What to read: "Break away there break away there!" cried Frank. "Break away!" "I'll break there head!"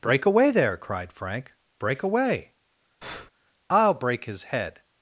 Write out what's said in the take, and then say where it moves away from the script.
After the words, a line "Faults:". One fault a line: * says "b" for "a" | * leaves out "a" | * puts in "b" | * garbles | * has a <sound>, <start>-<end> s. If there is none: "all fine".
"Break away there!" cried Frank. "Break away!" "I'll break his head!"
Faults:
* leaves out "break away there"
* has a breath, 3.0-3.3 s
* says "his" for "there"